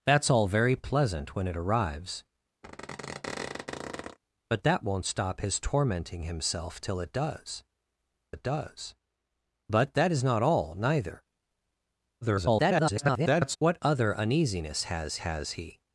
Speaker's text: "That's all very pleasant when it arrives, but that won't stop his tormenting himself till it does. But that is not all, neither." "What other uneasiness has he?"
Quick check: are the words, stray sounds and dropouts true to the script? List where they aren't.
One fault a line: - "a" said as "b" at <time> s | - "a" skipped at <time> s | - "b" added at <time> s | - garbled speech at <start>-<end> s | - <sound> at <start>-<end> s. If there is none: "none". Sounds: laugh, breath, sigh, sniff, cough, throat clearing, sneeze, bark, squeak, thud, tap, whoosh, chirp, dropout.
- squeak at 2.6-4.2 s
- "it does" added at 8.3 s
- garbled speech at 12.2-13.6 s
- "has" added at 15.2 s